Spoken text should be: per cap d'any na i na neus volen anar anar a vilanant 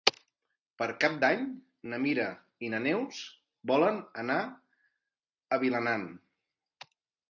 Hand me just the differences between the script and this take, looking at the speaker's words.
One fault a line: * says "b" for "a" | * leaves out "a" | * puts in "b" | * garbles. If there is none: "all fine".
* puts in "mira"
* leaves out "anar"